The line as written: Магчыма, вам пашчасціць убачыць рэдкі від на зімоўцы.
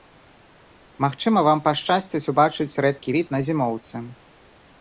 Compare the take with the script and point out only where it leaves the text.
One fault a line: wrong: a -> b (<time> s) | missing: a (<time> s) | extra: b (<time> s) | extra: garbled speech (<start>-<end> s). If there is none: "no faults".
no faults